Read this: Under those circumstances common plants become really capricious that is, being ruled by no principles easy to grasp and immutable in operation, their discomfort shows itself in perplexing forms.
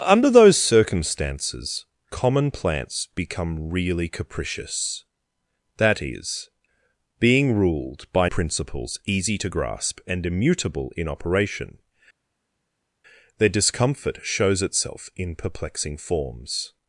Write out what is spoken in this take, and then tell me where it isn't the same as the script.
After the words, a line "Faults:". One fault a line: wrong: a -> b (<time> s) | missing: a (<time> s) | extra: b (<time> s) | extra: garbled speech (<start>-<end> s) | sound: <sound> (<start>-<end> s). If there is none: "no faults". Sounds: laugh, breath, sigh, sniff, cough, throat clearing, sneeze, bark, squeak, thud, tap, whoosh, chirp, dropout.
Under those circumstances common plants become really capricious that is, being ruled by principles easy to grasp and immutable in operation, their discomfort shows itself in perplexing forms.
Faults:
missing: no (8.3 s)